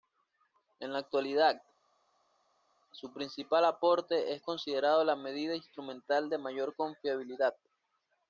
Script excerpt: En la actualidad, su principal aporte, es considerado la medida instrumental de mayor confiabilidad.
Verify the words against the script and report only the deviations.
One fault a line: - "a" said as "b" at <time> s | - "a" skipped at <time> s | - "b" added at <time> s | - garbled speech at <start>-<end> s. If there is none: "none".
none